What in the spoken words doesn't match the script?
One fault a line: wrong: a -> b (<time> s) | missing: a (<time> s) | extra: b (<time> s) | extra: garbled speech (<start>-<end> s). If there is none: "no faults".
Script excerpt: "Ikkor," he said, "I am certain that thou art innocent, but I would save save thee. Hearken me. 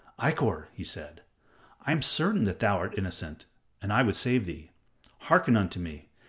wrong: but -> and (3.8 s)
missing: save (4.5 s)
extra: unto (5.6 s)